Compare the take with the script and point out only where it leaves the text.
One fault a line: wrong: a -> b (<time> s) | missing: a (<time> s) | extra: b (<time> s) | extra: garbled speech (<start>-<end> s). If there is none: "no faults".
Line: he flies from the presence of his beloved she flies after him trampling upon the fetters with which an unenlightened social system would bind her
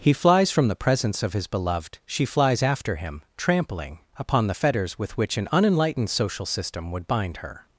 no faults